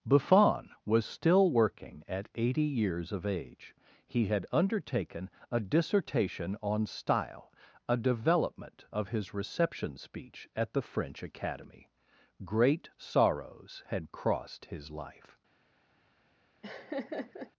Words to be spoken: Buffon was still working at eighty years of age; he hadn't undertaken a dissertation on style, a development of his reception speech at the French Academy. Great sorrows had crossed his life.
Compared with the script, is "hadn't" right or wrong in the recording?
wrong